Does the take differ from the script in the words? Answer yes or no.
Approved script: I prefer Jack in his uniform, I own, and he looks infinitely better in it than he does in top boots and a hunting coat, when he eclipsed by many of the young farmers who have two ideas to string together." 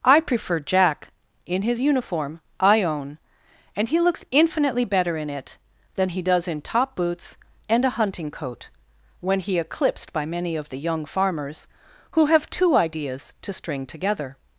no